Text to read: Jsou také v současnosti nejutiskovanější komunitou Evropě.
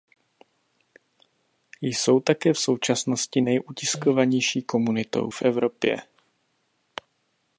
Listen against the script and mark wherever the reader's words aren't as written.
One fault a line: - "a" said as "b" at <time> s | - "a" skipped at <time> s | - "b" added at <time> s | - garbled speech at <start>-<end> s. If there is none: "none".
- "v" added at 5.3 s